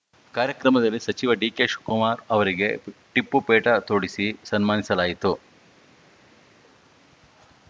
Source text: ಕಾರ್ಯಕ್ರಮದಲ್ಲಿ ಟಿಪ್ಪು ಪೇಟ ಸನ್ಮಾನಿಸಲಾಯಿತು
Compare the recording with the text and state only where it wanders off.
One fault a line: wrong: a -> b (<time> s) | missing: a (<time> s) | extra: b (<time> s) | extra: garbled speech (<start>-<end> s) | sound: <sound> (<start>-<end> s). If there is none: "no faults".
extra: ಸಚಿವ ಡಿಕೆಶಿವಕುಮಾರ್ ಅವರಿಗೆ (1.0 s)
extra: ತೊಡಿಸಿ (3.9 s)